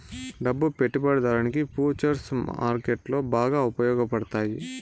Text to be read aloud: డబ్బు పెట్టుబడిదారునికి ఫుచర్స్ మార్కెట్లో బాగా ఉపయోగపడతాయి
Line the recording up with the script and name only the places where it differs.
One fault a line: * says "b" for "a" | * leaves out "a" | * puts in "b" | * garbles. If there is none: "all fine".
all fine